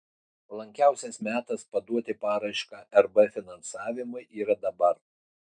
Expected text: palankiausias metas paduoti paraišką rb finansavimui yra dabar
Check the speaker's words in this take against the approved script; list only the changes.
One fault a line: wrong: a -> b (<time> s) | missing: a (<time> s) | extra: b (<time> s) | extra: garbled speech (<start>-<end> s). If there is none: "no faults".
no faults